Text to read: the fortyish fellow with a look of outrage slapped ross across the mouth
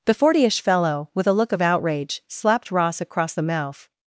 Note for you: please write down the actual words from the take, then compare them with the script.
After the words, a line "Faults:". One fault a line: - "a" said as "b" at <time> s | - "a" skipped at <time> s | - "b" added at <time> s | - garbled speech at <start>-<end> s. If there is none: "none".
the fortyish fellow with a look of outrage slapped ross across the mouth
Faults:
none